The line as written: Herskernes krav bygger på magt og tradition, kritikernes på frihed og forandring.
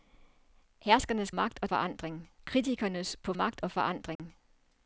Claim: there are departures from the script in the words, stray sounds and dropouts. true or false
true